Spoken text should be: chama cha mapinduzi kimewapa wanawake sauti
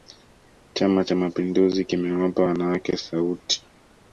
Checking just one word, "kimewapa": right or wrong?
right